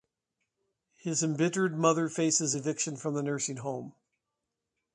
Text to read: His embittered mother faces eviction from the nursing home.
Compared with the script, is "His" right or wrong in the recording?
right